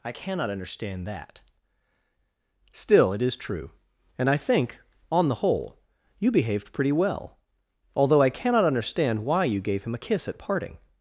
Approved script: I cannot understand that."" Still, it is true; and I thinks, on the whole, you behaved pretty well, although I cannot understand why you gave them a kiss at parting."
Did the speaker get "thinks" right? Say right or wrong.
wrong